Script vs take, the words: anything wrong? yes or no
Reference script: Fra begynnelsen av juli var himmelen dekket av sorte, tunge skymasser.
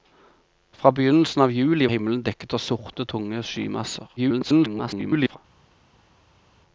yes